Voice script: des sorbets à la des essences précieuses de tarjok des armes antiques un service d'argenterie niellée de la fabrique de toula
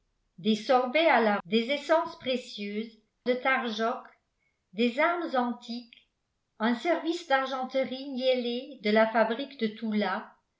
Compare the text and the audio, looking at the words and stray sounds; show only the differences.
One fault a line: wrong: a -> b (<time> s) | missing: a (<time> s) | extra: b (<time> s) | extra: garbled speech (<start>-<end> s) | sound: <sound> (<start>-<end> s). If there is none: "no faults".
no faults